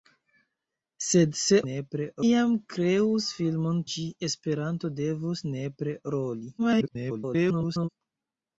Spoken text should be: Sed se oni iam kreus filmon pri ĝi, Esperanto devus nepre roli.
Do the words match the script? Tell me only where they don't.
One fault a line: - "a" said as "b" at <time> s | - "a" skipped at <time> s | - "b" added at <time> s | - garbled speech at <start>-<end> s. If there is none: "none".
- "oni" said as "nepre" at 1.7 s
- "pri" skipped at 3.8 s
- garbled speech at 6.6-7.9 s